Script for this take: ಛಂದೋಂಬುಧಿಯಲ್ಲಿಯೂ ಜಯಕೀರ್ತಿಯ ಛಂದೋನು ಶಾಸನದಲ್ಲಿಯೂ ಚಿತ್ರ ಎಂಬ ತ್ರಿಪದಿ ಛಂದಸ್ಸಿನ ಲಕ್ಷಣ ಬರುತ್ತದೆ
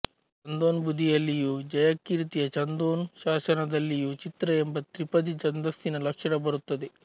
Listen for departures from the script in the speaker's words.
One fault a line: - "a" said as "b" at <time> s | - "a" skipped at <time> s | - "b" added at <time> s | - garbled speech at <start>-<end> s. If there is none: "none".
none